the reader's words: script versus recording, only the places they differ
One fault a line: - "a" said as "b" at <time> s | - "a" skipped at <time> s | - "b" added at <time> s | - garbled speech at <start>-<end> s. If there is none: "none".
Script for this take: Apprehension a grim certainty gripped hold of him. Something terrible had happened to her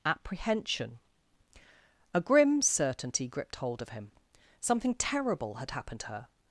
none